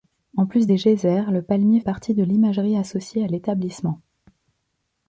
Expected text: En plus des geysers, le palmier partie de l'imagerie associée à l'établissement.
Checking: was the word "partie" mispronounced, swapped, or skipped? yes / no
no